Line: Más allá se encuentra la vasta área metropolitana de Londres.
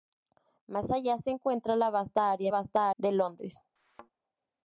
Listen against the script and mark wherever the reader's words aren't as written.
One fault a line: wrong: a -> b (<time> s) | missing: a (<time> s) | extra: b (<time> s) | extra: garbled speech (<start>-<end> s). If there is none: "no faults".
wrong: metropolitana -> vasta (2.5 s)